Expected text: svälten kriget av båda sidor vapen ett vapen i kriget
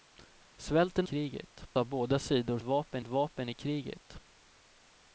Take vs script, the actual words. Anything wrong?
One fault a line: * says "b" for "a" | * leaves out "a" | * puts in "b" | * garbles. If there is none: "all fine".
all fine